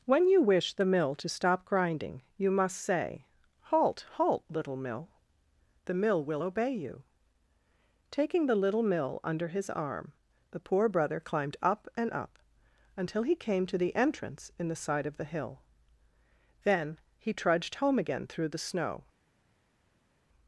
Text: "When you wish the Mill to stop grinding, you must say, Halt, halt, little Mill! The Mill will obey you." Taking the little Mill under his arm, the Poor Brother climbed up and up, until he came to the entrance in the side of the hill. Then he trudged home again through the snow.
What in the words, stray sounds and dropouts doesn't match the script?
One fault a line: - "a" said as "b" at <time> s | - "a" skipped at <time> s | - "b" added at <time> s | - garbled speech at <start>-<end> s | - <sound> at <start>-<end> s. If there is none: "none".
none